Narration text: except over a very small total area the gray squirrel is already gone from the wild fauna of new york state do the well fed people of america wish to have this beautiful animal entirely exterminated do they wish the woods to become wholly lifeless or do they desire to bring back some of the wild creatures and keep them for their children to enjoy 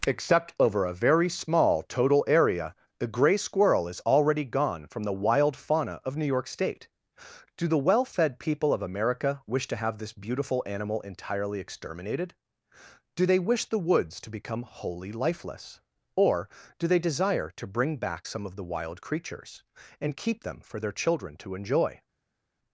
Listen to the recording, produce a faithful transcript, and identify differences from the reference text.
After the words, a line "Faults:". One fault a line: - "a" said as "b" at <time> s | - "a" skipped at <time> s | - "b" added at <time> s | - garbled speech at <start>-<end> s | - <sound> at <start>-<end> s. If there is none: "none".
except over a very small total area the gray squirrel is already gone from the wild fauna of new york state do the well fed people of america wish to have this beautiful animal entirely exterminated do they wish the woods to become wholly lifeless or do they desire to bring back some of the wild creatures and keep them for their children to enjoy
Faults:
none